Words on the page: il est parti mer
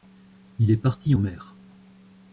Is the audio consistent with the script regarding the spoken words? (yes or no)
yes